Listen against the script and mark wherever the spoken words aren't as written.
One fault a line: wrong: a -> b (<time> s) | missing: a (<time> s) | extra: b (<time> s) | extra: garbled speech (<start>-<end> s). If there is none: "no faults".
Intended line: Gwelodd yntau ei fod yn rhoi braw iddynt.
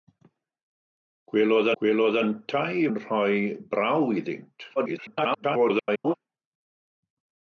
extra: gwelodd (1.8 s)
missing: fod (2.9 s)
extra: garbled speech (4.8-6.1 s)